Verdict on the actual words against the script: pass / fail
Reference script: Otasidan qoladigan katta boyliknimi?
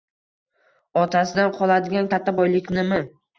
pass